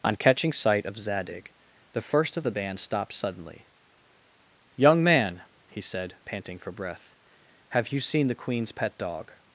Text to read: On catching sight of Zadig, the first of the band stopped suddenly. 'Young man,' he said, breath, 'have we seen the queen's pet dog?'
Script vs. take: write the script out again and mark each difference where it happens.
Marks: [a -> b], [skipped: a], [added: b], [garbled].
On catching sight of Zadig, the first of the band stopped suddenly. 'Young man,' he said, [added: panting for] breath, 'have [we -> you] seen the queen's pet dog?'